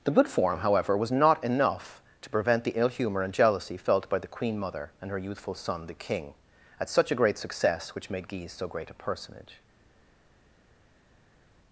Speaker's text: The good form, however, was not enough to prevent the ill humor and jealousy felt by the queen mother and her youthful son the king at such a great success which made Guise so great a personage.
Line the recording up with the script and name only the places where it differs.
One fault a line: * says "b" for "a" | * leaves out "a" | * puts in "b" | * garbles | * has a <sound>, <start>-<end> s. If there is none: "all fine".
all fine